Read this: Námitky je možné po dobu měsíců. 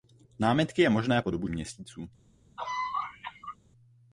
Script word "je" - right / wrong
right